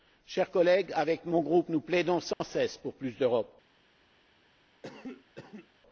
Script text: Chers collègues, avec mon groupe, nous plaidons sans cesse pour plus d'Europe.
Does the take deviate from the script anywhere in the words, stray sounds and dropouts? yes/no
yes